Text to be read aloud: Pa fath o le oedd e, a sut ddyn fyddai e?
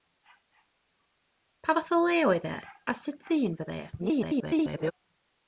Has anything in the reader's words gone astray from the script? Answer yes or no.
yes